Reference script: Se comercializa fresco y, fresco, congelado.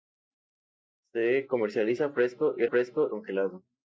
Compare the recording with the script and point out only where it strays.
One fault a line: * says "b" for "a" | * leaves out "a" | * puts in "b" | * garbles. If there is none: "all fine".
all fine